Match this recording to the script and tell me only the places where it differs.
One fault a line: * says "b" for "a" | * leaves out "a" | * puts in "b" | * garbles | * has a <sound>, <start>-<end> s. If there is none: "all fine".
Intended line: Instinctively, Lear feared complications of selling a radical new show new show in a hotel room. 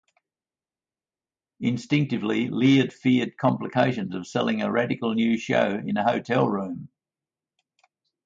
* leaves out "new show"